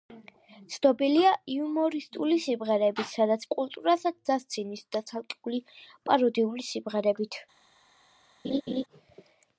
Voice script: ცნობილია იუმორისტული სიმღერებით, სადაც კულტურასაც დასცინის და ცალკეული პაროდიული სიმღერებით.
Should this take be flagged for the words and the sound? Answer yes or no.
yes